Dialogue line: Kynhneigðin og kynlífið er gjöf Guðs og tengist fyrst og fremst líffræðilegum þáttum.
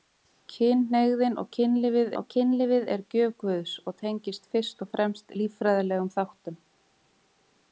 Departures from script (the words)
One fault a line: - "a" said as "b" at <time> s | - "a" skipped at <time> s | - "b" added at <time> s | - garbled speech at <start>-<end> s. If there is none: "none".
- "og kynlífið" added at 2.2 s